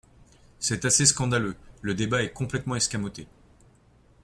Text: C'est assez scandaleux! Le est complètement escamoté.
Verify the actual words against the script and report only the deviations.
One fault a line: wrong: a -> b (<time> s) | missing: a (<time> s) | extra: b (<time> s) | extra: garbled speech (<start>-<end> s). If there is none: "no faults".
extra: débat (1.9 s)